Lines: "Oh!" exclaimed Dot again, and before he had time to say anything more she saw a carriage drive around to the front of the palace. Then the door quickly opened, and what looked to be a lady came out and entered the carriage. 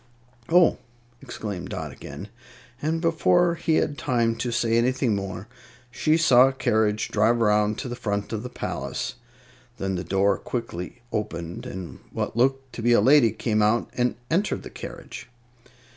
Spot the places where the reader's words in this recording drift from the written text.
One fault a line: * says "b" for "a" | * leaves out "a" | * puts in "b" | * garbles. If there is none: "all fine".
all fine